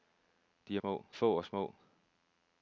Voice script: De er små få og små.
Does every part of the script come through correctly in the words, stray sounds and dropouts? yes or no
yes